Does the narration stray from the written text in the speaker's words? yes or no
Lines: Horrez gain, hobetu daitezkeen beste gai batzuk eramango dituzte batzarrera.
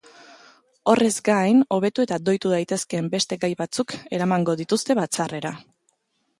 yes